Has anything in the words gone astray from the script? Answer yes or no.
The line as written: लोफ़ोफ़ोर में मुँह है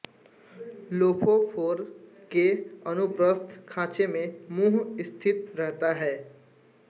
yes